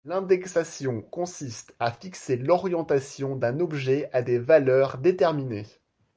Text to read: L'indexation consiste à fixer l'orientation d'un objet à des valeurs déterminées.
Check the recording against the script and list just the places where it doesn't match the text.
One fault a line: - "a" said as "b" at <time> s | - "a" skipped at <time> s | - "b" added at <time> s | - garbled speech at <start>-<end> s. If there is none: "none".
none